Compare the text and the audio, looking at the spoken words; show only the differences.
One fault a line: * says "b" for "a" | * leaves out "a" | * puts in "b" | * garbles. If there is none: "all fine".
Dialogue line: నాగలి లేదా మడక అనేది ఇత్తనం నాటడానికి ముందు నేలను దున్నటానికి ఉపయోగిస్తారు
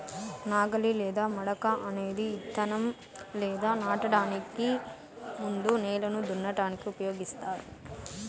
* puts in "లేదా"